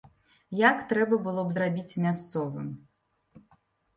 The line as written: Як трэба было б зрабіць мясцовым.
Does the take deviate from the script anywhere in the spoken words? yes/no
no